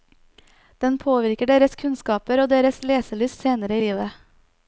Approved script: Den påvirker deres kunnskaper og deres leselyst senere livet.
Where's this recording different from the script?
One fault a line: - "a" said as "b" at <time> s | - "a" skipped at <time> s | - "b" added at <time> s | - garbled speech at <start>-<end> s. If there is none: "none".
none